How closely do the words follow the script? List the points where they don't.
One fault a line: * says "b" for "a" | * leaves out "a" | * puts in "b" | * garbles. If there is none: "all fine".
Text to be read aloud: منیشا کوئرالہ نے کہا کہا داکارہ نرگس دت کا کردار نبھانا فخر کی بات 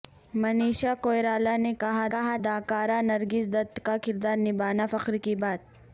all fine